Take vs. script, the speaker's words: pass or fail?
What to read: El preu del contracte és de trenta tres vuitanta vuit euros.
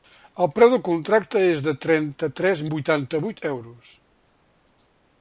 pass